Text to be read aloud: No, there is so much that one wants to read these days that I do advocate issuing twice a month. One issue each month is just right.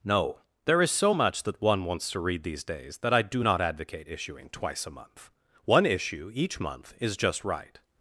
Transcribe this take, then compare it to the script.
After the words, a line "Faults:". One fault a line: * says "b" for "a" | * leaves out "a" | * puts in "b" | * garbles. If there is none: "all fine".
No, there is so much that one wants to read these days that I do not advocate issuing twice a month. One issue each month is just right.
Faults:
* puts in "not"